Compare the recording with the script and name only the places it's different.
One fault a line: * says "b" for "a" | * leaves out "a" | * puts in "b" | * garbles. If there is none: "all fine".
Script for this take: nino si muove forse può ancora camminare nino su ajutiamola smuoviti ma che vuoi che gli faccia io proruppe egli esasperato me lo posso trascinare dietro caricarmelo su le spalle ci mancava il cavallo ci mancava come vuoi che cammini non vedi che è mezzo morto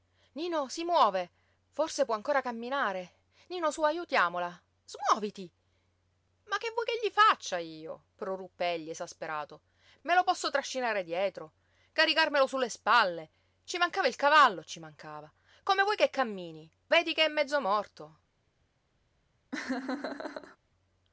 * leaves out "non"